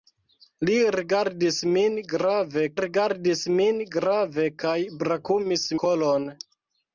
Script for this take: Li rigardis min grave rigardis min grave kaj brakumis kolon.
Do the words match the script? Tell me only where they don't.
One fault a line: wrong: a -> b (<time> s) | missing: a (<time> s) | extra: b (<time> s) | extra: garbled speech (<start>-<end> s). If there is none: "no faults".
no faults